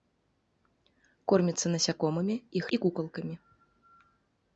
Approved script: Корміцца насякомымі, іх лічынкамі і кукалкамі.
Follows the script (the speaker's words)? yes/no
no